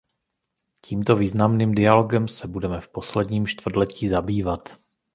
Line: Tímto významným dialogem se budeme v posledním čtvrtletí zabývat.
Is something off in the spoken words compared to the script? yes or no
no